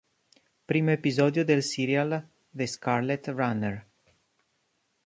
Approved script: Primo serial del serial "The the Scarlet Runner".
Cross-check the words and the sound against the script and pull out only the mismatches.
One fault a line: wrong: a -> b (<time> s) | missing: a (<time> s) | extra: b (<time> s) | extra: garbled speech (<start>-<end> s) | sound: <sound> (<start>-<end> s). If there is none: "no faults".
wrong: serial -> episodio (0.9 s)
missing: the (2.7 s)